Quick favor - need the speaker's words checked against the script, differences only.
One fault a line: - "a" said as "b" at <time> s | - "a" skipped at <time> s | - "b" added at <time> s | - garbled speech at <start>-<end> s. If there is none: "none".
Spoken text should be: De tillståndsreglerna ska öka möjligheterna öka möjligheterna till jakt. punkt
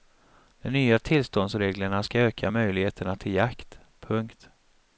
- "nya" added at 0.7 s
- "öka möjligheterna" skipped at 3.2 s